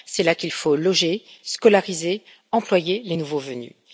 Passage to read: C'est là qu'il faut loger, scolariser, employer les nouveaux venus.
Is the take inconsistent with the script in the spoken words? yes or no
no